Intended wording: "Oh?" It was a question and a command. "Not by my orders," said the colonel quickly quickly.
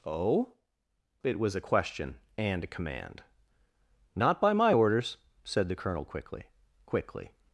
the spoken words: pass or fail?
pass